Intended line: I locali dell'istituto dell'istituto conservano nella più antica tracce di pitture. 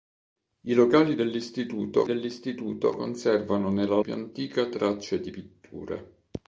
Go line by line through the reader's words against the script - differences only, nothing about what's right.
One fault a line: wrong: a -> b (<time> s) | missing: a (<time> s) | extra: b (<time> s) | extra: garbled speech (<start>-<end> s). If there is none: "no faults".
no faults